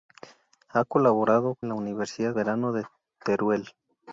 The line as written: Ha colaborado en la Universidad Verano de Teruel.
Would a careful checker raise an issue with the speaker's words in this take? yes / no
no